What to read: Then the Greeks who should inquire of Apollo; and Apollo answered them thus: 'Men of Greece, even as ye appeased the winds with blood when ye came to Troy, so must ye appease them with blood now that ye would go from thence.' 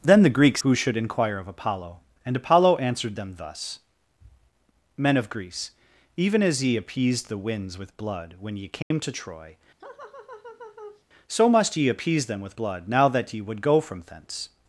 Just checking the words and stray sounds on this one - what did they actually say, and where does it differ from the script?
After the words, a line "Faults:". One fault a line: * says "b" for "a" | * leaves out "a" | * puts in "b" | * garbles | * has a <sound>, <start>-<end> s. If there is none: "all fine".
Then the Greeks who should inquire of Apollo; and Apollo answered them thus: 'Men of Greece, even as ye appeased the winds with blood when ye came to Troy, so must ye appease them with blood now that ye would go from thence.'
Faults:
* has a dropout, 8.8-8.9 s
* has a laugh, 9.8-11.0 s